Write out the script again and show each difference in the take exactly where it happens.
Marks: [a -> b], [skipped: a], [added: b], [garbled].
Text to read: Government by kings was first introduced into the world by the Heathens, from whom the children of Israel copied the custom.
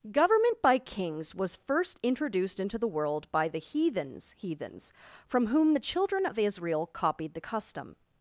Government by kings was first introduced into the world by the Heathens, [added: Heathens] from whom the children of Israel copied the custom.